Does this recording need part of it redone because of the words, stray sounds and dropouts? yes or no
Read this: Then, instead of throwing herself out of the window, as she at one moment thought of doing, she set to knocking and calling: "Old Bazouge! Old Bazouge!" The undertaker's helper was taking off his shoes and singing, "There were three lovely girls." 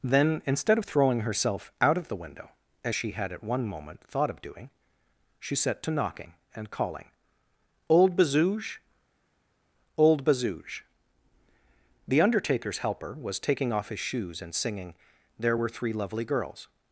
yes